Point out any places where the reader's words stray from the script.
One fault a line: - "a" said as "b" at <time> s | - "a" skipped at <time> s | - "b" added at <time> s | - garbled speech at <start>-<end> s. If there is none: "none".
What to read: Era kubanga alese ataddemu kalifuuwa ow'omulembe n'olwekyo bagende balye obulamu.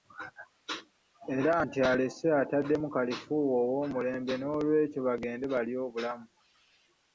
- "kubanga" said as "nti" at 1.6 s